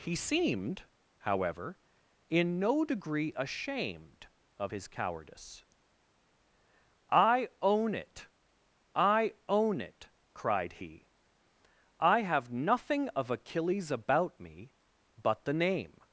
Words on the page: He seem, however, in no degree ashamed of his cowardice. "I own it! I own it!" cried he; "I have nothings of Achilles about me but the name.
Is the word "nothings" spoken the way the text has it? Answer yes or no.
no